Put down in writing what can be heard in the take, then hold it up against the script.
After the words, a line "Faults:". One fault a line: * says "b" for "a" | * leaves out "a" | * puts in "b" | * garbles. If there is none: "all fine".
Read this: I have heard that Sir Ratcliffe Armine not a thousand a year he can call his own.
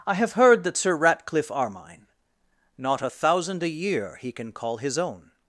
I have heard that Sir Ratcliffe Armine not a thousand a year he can call his own.
Faults:
all fine